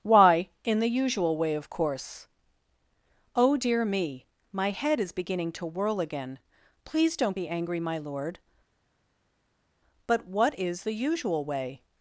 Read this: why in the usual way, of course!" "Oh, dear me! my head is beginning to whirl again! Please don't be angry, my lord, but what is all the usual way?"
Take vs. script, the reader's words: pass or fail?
fail